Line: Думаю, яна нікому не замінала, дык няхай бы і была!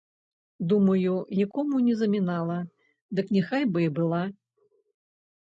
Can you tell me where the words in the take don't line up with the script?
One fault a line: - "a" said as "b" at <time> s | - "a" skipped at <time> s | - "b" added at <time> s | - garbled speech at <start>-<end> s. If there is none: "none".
- "яна" skipped at 1.1 s